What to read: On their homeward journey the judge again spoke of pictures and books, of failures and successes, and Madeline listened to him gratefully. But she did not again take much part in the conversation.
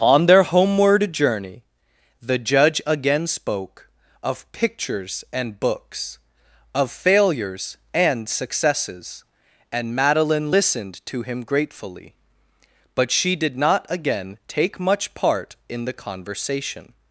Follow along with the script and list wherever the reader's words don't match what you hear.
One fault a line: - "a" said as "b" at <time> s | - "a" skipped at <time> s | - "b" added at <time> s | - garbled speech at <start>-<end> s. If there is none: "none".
none